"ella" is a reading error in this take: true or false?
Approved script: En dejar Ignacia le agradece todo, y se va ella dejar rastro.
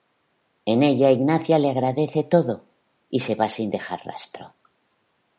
true